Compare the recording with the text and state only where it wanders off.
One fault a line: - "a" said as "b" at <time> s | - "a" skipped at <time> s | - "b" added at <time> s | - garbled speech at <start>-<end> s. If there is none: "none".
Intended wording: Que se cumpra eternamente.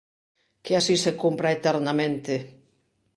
- "así" added at 0.8 s